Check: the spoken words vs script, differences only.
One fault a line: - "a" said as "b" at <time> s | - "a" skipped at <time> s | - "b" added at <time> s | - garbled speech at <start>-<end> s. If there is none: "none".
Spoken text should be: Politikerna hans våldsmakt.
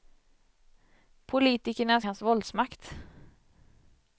none